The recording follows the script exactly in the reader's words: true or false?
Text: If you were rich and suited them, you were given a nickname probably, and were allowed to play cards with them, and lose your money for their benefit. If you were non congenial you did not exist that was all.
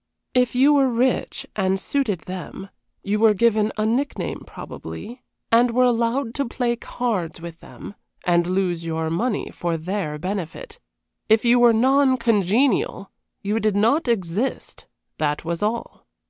true